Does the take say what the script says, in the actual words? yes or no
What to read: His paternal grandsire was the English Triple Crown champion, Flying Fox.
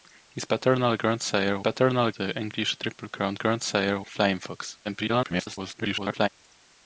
no